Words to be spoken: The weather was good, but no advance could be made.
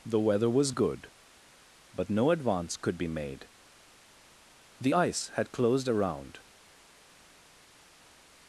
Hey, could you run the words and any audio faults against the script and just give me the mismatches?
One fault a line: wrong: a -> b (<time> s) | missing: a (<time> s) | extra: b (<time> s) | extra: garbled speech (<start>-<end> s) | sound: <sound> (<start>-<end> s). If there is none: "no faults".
extra: The ice had closed around (4.8 s)